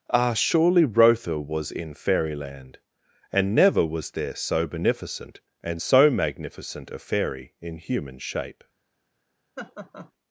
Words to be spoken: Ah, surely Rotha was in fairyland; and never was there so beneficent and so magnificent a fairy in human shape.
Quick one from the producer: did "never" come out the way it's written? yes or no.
yes